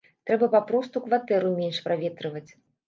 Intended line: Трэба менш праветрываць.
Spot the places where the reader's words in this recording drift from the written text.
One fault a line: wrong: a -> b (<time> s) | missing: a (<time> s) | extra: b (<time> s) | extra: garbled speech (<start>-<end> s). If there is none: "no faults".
extra: папросту кватэру (0.6 s)